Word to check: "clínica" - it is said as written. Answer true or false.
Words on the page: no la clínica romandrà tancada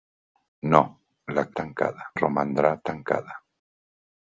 false